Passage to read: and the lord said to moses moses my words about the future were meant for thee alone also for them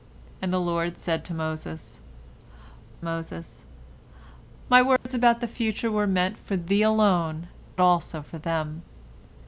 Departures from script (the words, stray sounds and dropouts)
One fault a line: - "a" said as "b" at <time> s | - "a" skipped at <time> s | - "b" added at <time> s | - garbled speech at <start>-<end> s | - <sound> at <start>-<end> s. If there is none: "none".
- dropout at 5.0-5.1 s